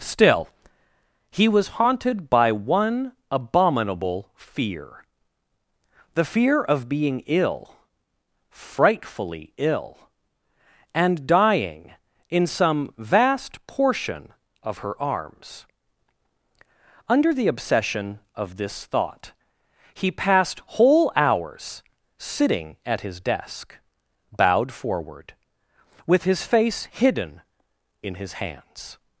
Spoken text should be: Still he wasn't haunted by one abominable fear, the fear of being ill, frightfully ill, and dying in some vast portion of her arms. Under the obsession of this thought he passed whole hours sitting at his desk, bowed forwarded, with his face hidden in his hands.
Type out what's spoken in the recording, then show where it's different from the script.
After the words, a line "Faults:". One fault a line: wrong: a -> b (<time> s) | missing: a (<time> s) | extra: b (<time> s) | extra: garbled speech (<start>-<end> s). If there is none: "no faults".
Still he was haunted by one abominable fear, the fear of being ill, frightfully ill, and dying in some vast portion of her arms. Under the obsession of this thought he passed whole hours sitting at his desk, bowed forward, with his face hidden in his hands.
Faults:
wrong: wasn't -> was (1.5 s)
wrong: forwarded -> forward (24.7 s)